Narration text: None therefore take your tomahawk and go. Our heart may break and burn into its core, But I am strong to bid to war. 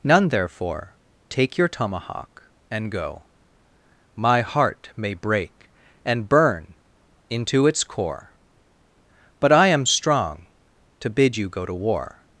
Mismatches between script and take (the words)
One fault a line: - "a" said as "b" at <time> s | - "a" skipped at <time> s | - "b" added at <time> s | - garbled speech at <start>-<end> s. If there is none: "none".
- "Our" said as "My" at 4.2 s
- "you go" added at 11.4 s